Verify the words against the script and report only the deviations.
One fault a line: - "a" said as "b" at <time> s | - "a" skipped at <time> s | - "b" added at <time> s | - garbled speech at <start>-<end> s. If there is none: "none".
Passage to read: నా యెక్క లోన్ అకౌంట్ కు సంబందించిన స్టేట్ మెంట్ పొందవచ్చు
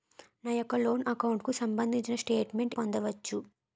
none